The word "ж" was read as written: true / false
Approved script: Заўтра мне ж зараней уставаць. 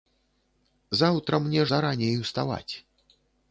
false